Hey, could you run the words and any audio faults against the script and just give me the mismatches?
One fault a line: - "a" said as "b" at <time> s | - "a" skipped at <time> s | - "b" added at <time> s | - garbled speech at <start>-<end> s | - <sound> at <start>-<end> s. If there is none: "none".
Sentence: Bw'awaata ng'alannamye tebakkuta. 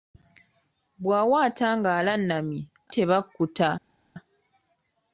none